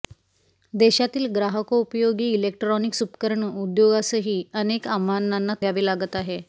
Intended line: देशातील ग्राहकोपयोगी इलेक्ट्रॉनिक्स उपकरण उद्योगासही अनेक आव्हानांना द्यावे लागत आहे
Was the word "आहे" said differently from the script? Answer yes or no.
no